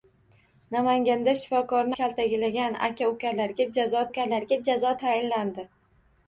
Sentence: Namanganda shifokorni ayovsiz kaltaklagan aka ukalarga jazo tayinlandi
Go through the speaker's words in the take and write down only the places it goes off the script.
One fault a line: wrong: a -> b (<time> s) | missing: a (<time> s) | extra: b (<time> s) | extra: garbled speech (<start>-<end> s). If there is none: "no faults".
missing: ayovsiz (1.9 s)
extra: ukalarga jazo (4.1 s)